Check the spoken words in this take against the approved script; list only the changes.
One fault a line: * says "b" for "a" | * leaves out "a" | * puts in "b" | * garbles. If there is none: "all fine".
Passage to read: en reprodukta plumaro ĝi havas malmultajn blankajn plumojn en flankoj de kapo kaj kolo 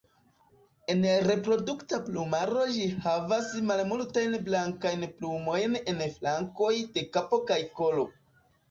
all fine